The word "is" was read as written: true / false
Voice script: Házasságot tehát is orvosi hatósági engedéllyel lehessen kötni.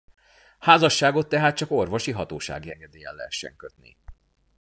false